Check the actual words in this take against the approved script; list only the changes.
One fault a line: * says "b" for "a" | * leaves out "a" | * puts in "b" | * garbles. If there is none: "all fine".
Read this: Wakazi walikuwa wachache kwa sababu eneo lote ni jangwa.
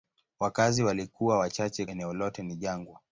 * leaves out "kwa sababu"